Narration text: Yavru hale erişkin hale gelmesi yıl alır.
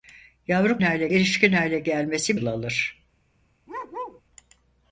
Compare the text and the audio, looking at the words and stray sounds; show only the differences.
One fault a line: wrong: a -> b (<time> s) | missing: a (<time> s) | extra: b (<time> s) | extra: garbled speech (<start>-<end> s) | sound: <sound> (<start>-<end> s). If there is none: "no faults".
sound: bark (3.7-4.2 s)